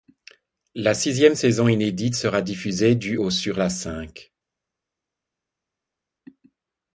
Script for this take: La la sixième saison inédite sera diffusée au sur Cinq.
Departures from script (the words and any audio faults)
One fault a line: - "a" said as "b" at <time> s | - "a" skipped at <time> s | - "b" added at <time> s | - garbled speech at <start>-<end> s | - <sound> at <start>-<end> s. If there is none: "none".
- "la" skipped at 0.9 s
- "du" added at 2.9 s
- "La" added at 3.6 s